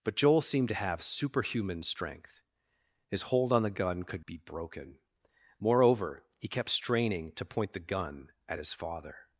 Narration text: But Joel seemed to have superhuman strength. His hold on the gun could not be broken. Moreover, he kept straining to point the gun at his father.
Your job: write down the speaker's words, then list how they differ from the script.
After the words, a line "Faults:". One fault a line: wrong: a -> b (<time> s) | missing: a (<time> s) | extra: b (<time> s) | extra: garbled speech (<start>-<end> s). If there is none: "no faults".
But Joel seemed to have superhuman strength. His hold on the gun could be broken. Moreover, he kept straining to point the gun at his father.
Faults:
missing: not (4.2 s)